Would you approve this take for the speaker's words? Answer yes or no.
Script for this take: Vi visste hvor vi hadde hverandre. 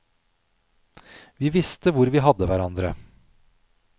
yes